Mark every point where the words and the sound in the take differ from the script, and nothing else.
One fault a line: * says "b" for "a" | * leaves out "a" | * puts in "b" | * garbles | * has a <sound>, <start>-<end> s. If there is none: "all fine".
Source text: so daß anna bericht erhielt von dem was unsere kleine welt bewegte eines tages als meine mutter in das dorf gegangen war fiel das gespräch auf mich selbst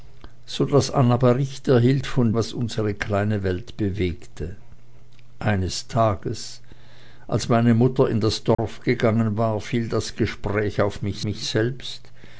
* leaves out "dem"
* has a dropout, 8.5-8.6 s
* puts in "mich"